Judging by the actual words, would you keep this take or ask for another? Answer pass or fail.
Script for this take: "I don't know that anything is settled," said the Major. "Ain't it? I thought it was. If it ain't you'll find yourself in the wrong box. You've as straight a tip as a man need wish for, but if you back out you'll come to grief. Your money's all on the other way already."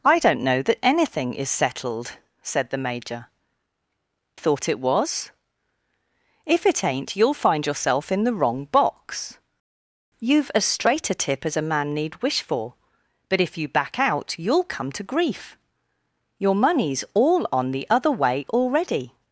fail